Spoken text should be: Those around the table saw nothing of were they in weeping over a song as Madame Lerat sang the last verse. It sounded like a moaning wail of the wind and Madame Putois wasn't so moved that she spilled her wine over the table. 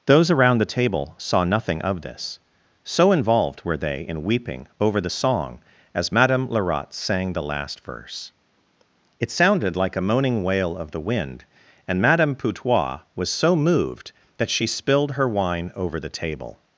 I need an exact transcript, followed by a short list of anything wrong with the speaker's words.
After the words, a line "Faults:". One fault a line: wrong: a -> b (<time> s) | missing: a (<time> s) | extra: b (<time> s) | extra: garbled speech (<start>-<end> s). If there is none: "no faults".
Those around the table saw nothing of this, so involved were they in weeping over the song as Madame Lerat sang the last verse. It sounded like a moaning wail of the wind and Madame Putois was so moved that she spilled her wine over the table.
Faults:
extra: this so involved (2.0 s)
wrong: a -> the (5.0 s)
wrong: wasn't -> was (13.2 s)